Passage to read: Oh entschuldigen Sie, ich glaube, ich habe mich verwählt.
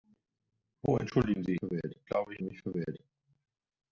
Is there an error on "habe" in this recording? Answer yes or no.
yes